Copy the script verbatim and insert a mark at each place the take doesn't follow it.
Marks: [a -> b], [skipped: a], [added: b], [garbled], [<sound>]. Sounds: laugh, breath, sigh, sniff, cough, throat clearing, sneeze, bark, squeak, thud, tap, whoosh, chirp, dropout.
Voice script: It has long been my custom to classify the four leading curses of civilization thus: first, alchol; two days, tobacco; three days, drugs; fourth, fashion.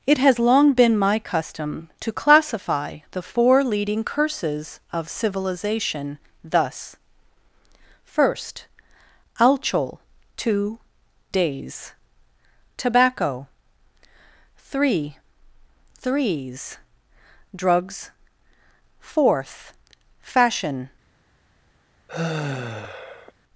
It has long been my custom to classify the four leading curses of civilization thus: first, alchol; two days, tobacco; three [days, -> threes] drugs; fourth, fashion. [sigh]